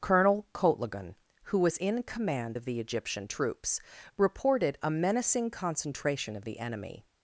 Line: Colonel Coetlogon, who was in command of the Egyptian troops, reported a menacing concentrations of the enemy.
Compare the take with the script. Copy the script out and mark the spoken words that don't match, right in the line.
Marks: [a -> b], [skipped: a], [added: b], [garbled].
Colonel Coetlogon, who was in command of the Egyptian troops, reported a menacing [concentrations -> concentration] of the enemy.